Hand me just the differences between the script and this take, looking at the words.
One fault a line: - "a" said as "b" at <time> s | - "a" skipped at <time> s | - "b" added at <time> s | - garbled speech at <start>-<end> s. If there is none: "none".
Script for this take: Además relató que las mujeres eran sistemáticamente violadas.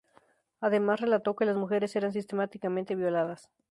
none